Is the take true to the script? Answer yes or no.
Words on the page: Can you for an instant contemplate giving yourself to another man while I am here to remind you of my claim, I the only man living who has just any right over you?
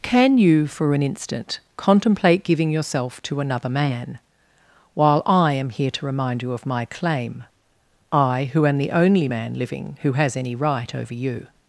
no